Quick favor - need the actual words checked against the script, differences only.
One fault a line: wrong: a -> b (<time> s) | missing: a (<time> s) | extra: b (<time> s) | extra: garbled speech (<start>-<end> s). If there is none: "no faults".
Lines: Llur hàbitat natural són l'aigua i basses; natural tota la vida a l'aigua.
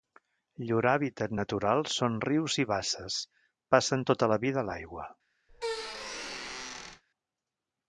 wrong: l'aigua -> rius (2.3 s)
wrong: natural -> passen (3.8 s)